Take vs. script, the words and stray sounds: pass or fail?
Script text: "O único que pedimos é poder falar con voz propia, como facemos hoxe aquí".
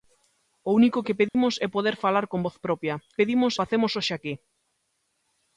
fail